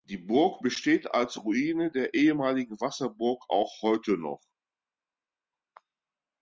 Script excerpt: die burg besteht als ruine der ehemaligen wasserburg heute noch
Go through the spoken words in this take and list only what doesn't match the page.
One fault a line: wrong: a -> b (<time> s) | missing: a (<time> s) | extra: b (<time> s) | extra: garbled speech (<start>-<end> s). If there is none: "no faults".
extra: auch (3.5 s)